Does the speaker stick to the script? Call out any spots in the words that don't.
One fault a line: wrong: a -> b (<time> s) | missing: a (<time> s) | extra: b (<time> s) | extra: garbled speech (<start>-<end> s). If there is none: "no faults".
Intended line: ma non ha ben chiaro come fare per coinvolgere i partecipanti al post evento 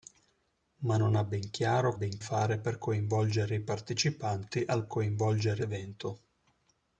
wrong: come -> ben (1.9 s)
wrong: post -> coinvolgere (4.8 s)